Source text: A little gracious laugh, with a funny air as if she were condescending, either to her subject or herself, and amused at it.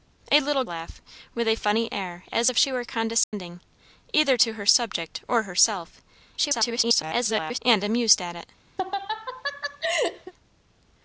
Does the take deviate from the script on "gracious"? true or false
true